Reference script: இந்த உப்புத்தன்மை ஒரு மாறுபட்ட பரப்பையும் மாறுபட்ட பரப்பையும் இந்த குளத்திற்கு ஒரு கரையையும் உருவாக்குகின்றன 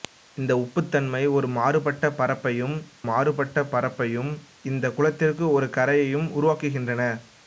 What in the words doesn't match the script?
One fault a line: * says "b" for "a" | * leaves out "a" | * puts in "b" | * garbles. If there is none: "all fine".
all fine